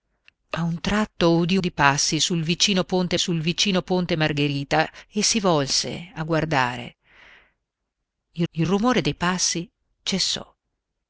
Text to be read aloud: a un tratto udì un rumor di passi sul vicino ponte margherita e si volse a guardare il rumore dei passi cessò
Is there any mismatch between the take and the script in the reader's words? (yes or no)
yes